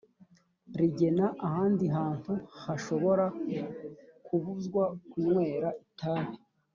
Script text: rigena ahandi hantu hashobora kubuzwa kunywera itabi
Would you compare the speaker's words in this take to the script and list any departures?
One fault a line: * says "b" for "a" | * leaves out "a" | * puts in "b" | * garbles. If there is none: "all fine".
all fine